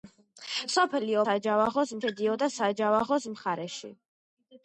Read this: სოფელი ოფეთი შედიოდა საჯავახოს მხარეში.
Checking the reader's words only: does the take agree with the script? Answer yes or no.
no